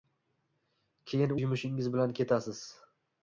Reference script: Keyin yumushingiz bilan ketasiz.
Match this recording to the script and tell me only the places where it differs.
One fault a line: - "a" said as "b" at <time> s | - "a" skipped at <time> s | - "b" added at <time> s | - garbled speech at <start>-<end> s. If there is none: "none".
none